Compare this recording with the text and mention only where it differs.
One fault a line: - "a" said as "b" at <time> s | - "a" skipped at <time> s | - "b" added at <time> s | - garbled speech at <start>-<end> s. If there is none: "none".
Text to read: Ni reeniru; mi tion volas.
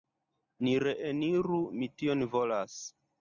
none